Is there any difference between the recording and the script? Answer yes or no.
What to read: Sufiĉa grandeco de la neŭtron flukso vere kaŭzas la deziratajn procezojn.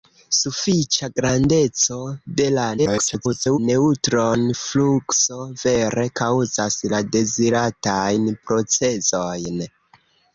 yes